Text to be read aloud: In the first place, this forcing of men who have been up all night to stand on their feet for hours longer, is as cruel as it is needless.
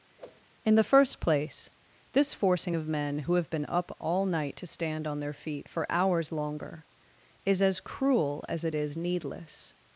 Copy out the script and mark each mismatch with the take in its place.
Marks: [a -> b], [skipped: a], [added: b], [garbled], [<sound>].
[whoosh] In the first place, this forcing of men who have been up all night to stand on their feet for hours longer, is as cruel as it is needless.